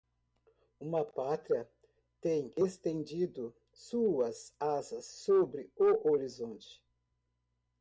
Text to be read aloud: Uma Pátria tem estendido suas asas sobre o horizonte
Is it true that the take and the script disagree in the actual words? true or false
false